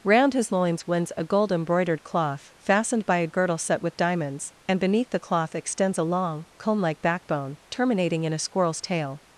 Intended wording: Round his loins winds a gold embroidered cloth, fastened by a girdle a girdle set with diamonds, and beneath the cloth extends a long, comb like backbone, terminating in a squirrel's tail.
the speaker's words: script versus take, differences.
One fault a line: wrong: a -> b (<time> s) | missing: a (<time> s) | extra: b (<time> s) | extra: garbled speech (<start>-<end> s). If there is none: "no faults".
missing: a girdle (3.6 s)